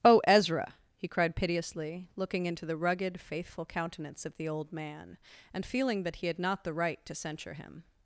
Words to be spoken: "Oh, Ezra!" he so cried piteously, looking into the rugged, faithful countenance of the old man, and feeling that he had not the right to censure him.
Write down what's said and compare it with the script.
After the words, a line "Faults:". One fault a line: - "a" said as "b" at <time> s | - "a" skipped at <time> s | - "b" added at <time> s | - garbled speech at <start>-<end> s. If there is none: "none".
"Oh, Ezra!" he cried piteously, looking into the rugged, faithful countenance of the old man, and feeling that he had not the right to censure him.
Faults:
- "so" skipped at 1.1 s